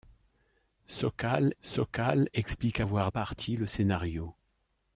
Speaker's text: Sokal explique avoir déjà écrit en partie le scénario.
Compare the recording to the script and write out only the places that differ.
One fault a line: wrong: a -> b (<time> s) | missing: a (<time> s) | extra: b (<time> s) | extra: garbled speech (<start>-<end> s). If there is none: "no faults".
extra: sokal (1.6 s)
missing: déjà écrit en (3.1 s)